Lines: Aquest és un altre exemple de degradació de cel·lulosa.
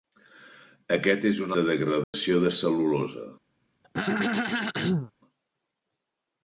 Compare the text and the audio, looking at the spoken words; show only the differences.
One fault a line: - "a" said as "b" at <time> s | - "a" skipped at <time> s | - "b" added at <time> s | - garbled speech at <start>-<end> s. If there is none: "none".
- "altre exemple" skipped at 1.5 s